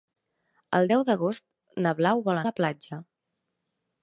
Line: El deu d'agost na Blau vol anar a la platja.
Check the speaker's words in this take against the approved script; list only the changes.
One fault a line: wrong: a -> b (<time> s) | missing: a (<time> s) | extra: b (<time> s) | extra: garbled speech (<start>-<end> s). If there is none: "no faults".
missing: anar (2.4 s)